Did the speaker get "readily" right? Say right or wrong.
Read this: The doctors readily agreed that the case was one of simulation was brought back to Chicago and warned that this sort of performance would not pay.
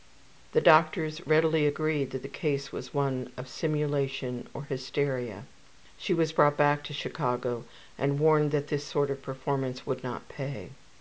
right